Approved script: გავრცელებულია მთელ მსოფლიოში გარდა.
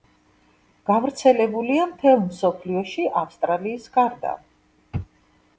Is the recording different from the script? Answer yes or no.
yes